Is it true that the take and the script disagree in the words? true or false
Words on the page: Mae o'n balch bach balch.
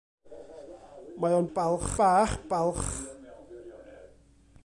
false